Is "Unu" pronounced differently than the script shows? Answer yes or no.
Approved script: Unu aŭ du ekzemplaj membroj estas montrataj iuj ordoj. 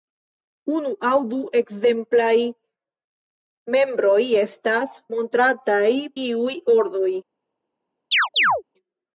no